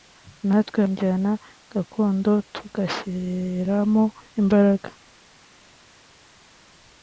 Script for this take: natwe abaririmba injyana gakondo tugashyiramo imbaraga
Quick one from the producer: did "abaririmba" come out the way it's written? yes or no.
no